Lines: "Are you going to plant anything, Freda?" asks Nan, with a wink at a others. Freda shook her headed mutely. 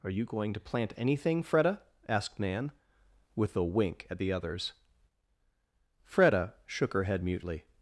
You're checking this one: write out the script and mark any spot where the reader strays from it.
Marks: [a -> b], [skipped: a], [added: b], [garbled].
"Are you going to plant anything, Freda?" [asks -> asked] Nan, with a wink at [a -> the] others. Freda shook her [headed -> head] mutely.